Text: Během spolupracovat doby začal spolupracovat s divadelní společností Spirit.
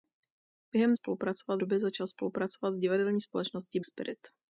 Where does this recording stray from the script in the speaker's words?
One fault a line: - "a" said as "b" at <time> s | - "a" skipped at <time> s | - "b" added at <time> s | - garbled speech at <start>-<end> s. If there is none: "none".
none